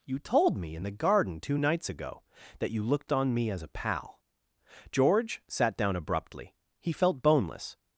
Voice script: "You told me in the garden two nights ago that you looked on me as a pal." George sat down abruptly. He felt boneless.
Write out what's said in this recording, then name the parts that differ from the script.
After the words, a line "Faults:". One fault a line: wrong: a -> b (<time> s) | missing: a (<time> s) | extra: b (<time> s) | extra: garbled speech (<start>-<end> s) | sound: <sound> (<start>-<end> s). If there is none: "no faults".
"You told me in the garden two nights ago that you looked on me as a pal." George sat down abruptly. He felt boneless.
Faults:
no faults